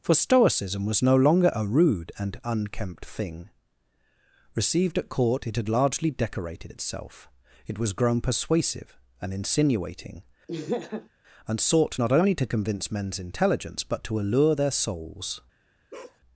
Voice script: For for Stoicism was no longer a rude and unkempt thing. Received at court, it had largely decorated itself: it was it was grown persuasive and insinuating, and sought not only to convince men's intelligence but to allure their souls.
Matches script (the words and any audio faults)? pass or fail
fail